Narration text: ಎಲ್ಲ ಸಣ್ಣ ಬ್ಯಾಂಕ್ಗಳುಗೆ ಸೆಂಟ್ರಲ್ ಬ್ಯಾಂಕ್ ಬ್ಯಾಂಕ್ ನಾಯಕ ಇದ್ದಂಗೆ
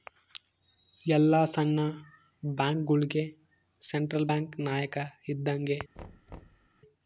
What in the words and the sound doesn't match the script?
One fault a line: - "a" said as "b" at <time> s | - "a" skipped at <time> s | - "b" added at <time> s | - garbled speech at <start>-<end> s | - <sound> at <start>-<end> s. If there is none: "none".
- "ಬ್ಯಾಂಕ್" skipped at 4.5 s
- thud at 6.0-6.7 s